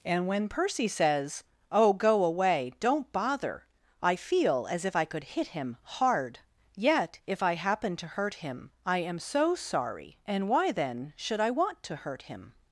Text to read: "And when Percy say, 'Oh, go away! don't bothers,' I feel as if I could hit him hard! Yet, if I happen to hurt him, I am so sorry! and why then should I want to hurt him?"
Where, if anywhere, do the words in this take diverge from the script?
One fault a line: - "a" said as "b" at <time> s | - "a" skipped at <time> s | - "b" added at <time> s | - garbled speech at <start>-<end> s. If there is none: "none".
- "say" said as "says" at 0.9 s
- "bothers" said as "bother" at 3.1 s